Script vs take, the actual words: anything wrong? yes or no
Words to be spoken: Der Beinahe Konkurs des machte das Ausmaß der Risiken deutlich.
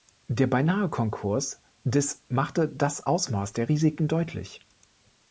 no